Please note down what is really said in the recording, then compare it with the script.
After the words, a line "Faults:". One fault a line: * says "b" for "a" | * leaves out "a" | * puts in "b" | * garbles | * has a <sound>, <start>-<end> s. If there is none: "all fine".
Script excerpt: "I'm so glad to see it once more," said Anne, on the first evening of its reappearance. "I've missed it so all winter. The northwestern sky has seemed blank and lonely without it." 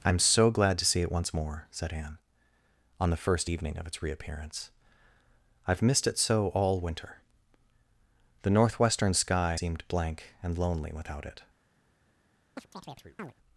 "I'm so glad to see it once more," said Anne, on the first evening of its reappearance. "I've missed it so all winter. The northwestern sky seemed blank and lonely without it."
Faults:
* leaves out "has"
* has a chirp, 12.6-13.3 s